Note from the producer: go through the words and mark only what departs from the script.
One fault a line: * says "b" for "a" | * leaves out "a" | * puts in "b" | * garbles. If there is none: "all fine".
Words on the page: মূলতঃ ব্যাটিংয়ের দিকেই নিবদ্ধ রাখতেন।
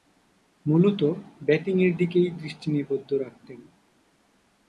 * puts in "দৃষ্টি"